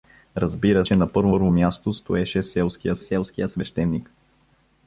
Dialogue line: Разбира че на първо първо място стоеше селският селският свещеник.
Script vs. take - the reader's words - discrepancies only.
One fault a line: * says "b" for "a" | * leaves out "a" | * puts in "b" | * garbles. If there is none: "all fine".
all fine